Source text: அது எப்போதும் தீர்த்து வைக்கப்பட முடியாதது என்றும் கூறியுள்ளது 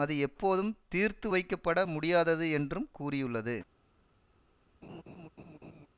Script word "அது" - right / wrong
right